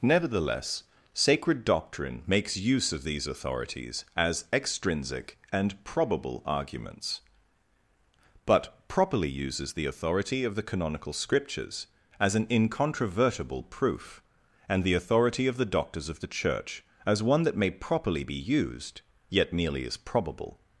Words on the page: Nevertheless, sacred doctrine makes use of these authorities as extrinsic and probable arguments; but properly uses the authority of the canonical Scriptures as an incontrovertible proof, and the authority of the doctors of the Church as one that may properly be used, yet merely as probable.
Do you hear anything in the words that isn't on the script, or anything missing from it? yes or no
no